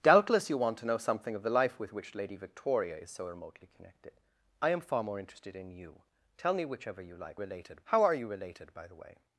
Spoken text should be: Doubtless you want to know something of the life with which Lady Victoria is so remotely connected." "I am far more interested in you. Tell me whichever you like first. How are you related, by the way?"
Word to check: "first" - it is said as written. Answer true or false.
false